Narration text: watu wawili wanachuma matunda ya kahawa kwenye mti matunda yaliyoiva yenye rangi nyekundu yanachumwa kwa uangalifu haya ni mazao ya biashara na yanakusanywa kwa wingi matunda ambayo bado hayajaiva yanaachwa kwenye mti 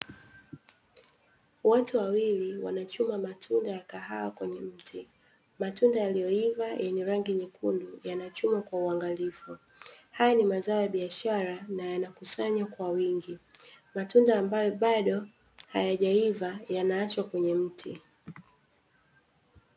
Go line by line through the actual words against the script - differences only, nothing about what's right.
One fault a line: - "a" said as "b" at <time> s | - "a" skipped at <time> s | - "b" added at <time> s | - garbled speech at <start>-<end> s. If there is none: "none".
none